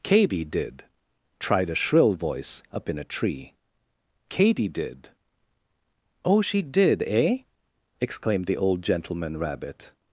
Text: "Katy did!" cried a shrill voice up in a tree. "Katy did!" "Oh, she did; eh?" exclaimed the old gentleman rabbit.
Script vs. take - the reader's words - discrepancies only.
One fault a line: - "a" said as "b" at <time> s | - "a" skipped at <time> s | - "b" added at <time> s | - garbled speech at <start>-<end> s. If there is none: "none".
- "cried" said as "tried" at 1.4 s